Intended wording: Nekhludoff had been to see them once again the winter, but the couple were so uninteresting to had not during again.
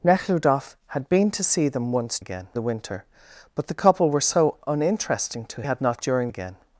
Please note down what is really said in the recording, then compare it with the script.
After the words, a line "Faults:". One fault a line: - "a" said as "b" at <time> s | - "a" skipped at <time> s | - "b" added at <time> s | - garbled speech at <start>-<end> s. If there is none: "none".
Nekhludoff had been to see them once again the winter, but the couple were so uninteresting to had not during again.
Faults:
none